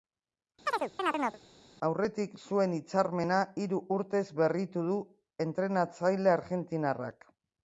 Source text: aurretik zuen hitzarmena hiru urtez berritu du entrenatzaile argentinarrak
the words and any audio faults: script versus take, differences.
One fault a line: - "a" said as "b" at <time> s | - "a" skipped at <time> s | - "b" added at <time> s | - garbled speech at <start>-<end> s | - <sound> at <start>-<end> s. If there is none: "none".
- chirp at 0.7-1.4 s